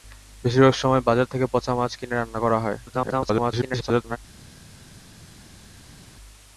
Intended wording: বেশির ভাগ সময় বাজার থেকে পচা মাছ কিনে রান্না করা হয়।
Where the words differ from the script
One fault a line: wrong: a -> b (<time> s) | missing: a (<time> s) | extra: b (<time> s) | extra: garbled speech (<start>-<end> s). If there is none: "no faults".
extra: garbled speech (2.9-4.2 s)